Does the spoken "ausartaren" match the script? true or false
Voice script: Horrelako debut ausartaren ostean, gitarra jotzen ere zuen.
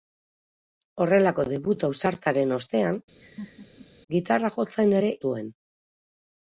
true